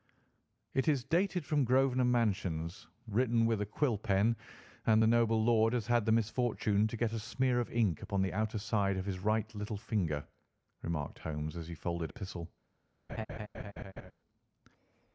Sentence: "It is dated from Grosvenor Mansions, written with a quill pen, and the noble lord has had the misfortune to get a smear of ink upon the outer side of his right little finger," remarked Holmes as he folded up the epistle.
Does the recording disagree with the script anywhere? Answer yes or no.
yes